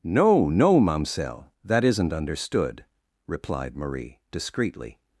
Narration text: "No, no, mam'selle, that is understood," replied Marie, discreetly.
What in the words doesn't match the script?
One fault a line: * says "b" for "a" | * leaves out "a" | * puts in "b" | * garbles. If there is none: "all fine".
* says "isn't" for "is"